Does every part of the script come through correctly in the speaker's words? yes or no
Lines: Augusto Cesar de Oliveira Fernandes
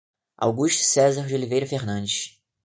yes